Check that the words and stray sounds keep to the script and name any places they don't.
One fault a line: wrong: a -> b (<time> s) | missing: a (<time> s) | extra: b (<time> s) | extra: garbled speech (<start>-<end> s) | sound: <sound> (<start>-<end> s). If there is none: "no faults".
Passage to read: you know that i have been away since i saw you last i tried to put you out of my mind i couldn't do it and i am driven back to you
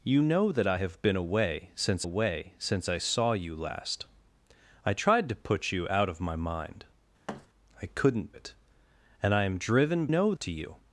extra: away since (2.0 s)
sound: thud (7.3-7.5 s)
missing: do (8.4 s)
wrong: back -> know (10.1 s)